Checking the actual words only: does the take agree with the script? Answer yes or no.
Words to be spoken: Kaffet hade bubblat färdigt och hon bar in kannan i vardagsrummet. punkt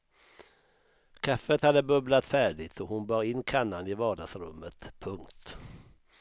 yes